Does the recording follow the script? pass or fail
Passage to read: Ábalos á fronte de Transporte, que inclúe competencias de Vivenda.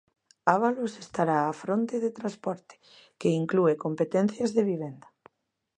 fail